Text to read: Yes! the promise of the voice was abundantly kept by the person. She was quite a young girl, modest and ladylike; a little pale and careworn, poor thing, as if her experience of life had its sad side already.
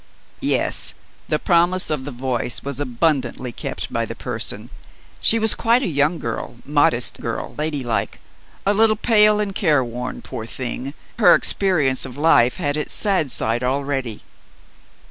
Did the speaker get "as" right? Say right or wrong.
wrong